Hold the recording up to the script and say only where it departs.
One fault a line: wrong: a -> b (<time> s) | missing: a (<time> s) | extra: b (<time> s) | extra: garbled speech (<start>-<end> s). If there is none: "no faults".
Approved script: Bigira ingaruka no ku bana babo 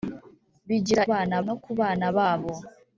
wrong: ingaruka -> bana (1.1 s)